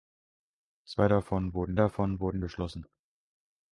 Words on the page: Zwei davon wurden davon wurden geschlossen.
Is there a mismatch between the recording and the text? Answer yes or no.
no